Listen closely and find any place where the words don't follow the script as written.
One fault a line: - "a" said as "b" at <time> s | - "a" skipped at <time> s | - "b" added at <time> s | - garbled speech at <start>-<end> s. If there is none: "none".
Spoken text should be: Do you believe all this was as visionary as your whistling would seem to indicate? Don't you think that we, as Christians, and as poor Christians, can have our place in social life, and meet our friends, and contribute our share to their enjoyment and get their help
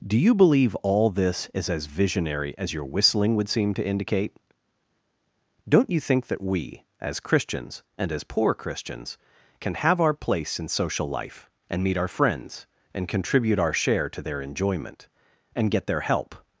- "was" said as "is" at 1.5 s